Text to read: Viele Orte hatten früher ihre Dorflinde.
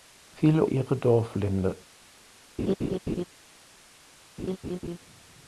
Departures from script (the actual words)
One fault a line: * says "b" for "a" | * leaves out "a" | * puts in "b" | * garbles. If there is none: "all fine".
* leaves out "Orte hatten früher"